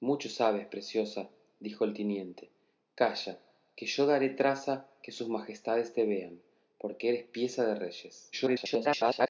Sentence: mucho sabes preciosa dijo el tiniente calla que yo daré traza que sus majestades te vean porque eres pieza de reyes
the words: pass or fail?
fail